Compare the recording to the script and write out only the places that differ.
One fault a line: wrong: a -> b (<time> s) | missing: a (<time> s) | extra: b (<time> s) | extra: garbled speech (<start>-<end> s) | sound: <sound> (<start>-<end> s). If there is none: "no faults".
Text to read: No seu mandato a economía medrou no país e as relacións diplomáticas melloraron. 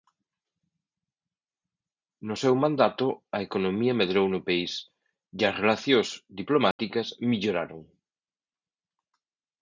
sound: dropout (6.7-6.8 s)